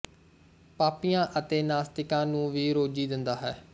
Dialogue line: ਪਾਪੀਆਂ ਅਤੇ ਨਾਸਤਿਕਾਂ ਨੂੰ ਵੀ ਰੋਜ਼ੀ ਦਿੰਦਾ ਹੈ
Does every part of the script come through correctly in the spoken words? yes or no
yes